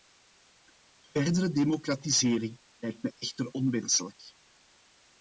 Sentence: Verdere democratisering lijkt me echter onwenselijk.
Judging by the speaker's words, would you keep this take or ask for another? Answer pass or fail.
pass